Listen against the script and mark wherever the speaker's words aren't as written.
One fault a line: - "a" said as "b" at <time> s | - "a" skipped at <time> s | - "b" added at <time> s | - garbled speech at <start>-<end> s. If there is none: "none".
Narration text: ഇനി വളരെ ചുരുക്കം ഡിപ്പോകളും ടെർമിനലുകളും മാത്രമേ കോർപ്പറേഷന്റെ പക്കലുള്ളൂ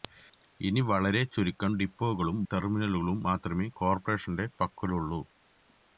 none